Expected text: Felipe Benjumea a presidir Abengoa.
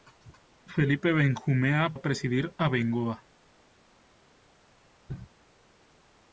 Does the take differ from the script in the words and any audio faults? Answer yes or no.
no